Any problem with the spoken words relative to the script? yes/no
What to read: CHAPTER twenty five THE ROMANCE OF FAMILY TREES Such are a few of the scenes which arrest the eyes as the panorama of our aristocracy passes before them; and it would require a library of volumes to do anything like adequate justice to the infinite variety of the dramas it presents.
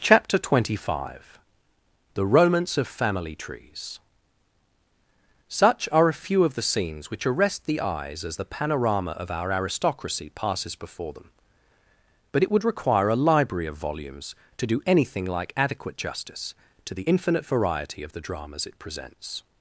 yes